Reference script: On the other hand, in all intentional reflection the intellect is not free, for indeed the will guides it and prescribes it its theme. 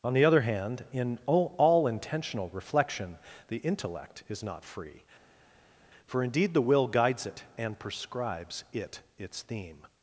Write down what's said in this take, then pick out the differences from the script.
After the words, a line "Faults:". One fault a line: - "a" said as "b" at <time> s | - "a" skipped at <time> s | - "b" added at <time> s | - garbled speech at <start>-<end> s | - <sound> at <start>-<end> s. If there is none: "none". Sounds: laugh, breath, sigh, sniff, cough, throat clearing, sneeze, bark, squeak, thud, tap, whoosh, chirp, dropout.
On the other hand, in all all intentional reflection the intellect is not free, for indeed the will guides it and prescribes it its theme.
Faults:
- "all" added at 1.6 s